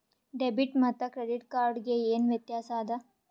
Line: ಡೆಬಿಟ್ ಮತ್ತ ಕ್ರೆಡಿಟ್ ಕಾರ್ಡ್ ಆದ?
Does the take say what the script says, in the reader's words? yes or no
no